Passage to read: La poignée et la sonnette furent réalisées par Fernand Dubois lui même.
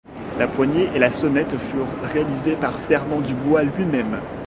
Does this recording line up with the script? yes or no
yes